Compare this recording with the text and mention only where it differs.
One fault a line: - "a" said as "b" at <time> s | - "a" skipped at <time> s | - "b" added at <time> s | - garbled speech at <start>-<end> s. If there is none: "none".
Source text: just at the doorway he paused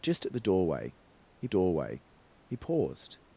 - "doorway he" added at 1.5 s